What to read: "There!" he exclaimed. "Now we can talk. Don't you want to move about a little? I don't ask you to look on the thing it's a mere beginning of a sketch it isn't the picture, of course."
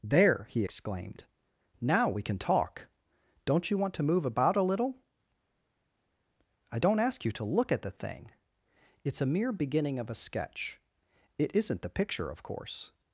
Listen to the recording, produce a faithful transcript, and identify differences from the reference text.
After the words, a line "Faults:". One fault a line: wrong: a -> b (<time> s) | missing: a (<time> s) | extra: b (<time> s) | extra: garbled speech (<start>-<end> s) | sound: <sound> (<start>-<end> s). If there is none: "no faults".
"There!" he exclaimed. "Now we can talk. Don't you want to move about a little? I don't ask you to look at the thing it's a mere beginning of a sketch it isn't the picture, of course."
Faults:
wrong: on -> at (7.7 s)